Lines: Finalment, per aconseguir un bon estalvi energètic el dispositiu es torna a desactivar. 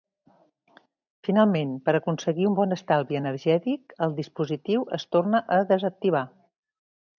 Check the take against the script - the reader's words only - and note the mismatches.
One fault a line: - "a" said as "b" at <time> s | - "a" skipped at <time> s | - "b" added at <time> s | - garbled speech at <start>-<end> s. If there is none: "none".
none